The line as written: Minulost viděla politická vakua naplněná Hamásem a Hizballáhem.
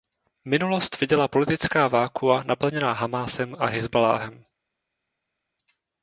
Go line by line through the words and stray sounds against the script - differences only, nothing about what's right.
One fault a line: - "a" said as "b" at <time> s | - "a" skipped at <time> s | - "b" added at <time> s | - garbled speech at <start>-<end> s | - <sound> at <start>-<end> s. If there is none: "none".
none